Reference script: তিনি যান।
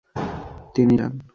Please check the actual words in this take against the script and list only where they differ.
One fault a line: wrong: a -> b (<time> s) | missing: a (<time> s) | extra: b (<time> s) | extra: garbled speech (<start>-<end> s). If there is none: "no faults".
no faults